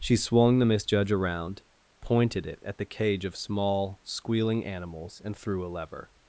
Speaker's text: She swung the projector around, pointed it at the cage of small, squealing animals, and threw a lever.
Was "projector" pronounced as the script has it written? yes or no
no